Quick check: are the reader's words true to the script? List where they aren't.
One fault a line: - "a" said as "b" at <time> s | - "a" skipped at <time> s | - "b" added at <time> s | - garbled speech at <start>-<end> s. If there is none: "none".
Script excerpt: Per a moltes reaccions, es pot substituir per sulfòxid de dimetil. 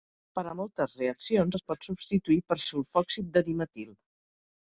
none